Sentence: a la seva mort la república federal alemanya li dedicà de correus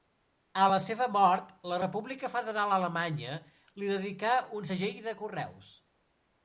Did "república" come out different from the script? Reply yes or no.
no